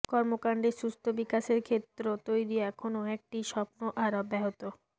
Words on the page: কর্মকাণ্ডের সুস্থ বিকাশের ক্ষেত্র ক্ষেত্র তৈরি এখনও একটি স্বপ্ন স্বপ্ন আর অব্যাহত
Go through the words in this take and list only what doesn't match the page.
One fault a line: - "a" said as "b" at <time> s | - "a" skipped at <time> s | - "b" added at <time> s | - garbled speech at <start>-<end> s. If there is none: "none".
- "ক্ষেত্র" skipped at 2.0 s
- "স্বপ্ন" skipped at 3.8 s